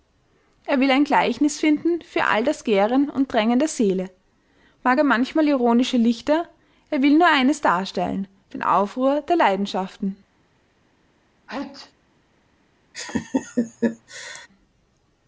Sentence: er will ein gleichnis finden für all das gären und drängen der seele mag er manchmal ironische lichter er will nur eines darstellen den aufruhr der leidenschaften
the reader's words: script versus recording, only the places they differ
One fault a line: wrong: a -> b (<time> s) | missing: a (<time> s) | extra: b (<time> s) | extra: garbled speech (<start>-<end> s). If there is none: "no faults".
no faults